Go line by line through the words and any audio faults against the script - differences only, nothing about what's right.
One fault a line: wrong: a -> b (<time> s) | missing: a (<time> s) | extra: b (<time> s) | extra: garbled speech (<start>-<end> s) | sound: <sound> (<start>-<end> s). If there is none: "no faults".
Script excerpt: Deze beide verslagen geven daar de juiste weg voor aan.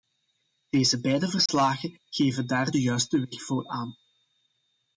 sound: dropout (1.5-1.5 s)